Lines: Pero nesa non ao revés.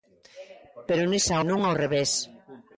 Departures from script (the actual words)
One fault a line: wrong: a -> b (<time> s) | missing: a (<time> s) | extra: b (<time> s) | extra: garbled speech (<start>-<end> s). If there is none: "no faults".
no faults